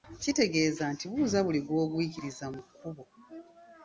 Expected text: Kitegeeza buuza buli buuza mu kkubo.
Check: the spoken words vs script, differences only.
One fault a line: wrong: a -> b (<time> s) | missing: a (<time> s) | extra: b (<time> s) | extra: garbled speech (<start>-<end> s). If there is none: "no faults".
extra: nti (0.9 s)
wrong: buuza -> gw'ogwikiriza (1.7 s)